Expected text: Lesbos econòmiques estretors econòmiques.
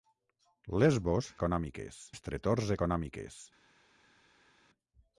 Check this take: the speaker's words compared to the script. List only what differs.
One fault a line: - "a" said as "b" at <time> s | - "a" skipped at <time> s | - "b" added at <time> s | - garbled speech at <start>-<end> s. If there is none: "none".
none